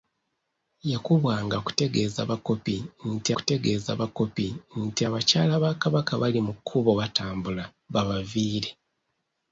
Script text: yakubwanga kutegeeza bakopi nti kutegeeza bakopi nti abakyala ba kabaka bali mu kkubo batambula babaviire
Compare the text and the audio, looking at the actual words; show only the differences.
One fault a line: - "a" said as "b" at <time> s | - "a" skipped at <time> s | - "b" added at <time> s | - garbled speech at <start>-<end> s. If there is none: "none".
none